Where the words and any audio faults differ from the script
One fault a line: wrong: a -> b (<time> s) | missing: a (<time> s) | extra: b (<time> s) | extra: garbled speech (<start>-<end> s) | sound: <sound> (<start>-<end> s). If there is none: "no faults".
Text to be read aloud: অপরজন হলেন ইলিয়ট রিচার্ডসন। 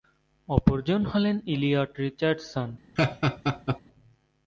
sound: laugh (3.0-3.8 s)